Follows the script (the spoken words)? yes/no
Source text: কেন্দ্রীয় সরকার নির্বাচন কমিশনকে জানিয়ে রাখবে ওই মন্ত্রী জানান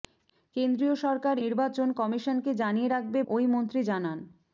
yes